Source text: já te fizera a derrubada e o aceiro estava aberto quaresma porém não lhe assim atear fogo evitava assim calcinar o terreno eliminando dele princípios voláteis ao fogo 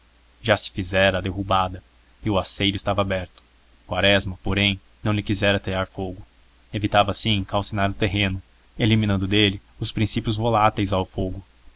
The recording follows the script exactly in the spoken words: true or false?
false